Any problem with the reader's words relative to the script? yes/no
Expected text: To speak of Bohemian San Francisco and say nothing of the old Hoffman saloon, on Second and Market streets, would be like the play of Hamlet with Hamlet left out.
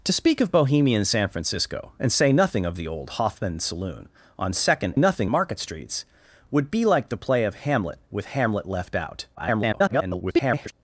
yes